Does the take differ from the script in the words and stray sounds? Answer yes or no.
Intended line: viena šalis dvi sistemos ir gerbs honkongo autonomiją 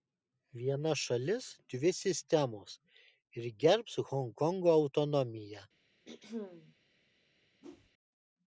yes